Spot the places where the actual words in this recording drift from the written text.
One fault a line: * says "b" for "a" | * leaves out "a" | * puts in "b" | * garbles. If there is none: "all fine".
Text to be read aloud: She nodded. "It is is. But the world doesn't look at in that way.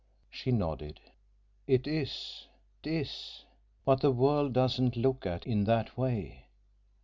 all fine